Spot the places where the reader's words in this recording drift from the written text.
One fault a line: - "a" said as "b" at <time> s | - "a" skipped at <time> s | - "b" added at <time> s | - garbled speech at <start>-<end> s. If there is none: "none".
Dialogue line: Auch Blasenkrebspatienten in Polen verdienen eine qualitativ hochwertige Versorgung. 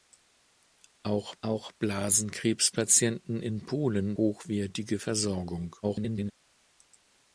- "auch" added at 1.4 s
- "verdienen eine qualitativ" skipped at 4.2 s
- garbled speech at 5.8-6.3 s